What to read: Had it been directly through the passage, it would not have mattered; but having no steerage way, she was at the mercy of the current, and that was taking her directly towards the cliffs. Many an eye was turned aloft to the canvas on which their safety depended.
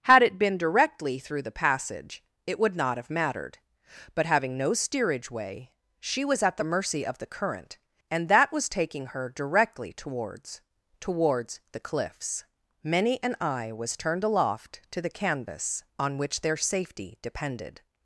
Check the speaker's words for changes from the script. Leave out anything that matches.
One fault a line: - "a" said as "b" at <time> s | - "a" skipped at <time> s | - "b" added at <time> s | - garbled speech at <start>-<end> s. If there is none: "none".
- "towards" added at 11.0 s